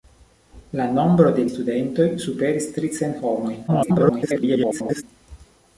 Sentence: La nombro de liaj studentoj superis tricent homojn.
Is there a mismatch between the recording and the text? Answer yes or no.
yes